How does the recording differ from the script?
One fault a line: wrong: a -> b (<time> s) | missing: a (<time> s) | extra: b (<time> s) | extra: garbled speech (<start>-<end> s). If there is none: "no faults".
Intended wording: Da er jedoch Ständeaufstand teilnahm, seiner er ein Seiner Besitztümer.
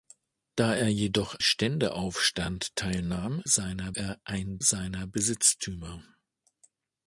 no faults